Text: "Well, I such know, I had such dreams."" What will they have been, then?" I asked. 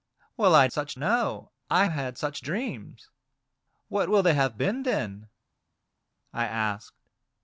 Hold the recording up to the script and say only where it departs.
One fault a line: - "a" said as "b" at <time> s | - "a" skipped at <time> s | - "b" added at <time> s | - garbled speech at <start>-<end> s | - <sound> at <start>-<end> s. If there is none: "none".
none